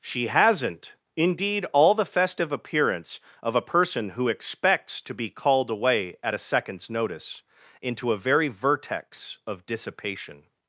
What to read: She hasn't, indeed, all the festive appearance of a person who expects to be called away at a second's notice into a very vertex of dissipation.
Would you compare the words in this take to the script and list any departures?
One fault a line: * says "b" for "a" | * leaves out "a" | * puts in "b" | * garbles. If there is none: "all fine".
all fine